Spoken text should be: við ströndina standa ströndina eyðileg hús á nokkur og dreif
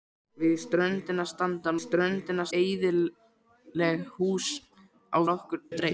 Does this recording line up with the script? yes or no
yes